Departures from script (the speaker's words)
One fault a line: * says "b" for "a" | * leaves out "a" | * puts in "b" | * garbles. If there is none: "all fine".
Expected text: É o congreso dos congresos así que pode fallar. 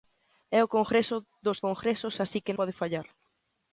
all fine